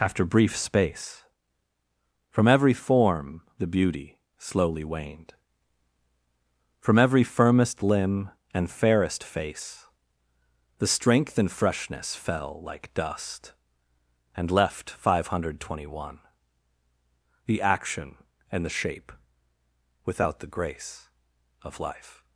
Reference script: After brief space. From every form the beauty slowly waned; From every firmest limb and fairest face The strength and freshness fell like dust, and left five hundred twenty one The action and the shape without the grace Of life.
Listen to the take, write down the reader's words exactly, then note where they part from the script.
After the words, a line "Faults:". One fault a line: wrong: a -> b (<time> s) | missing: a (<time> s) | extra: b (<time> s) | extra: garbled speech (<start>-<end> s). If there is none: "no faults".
After brief space. From every form the beauty slowly waned; From every firmest limb and fairest face The strength and freshness fell like dust, and left five hundred twenty one The action and the shape without the grace Of life.
Faults:
no faults